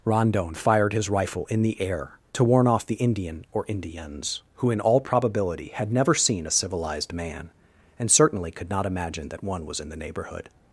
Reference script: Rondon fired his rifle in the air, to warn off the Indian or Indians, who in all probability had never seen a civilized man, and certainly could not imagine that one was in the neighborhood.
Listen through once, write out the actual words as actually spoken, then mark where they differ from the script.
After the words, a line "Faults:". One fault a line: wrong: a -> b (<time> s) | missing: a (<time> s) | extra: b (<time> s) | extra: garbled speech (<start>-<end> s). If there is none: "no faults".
Rondon fired his rifle in the air, to warn off the Indian or Indians, who in all probability had never seen a civilized man, and certainly could not imagine that one was in the neighborhood.
Faults:
no faults